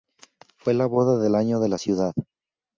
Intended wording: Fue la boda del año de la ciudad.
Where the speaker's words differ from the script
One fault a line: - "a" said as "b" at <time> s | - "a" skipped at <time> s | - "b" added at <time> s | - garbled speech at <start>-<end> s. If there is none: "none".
none